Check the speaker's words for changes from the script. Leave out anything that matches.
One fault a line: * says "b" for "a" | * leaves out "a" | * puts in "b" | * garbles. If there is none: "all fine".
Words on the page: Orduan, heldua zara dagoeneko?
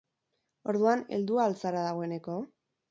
* puts in "al"